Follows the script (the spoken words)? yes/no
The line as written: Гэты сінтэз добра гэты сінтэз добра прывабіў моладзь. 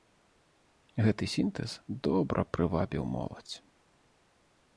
no